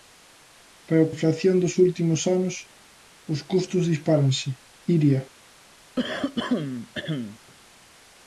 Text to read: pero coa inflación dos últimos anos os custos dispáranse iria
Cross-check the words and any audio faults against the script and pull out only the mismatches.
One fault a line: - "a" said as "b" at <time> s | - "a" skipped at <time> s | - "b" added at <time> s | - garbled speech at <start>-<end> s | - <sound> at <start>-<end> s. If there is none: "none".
- "coa" skipped at 1.1 s
- throat clearing at 6.0-7.4 s